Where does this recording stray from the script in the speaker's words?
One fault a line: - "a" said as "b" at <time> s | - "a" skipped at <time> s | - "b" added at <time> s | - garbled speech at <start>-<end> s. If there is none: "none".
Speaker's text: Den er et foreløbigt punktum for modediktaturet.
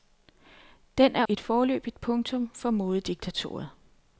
none